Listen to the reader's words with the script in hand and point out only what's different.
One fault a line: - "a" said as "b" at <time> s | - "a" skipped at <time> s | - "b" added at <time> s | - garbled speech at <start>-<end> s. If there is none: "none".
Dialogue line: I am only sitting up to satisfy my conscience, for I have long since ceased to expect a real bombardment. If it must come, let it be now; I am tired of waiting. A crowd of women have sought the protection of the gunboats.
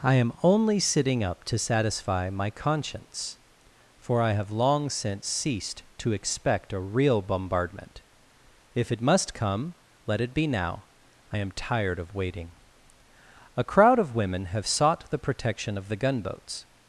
none